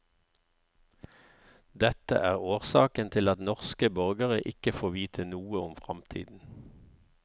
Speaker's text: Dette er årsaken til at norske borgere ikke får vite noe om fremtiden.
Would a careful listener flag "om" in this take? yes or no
no